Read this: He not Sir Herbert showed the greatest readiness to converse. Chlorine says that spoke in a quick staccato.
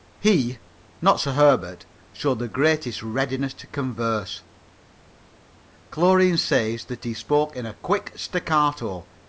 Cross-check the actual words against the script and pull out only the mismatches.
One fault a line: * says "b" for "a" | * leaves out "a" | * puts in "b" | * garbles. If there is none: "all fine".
* puts in "he"